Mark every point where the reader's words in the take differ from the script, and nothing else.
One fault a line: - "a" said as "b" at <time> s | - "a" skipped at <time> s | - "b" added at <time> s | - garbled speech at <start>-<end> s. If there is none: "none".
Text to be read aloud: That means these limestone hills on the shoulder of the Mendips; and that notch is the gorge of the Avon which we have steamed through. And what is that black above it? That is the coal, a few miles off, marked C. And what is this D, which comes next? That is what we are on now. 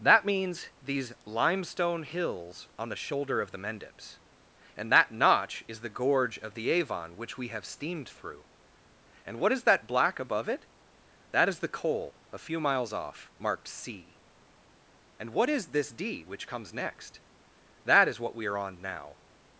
none